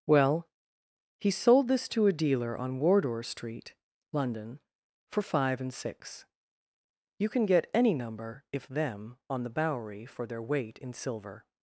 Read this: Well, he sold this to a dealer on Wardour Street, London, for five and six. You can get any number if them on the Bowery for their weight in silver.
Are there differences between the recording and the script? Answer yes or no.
no